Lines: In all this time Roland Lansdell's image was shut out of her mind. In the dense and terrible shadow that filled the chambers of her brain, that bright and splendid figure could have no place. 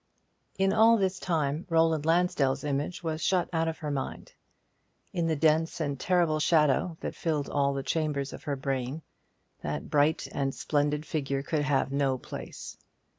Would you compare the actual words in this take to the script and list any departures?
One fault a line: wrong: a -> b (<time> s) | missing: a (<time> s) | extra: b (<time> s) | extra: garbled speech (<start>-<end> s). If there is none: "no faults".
extra: all (7.5 s)